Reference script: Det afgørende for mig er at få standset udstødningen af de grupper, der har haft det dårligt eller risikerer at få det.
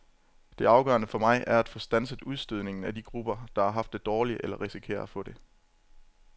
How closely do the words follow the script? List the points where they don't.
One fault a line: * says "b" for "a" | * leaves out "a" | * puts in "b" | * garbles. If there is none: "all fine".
all fine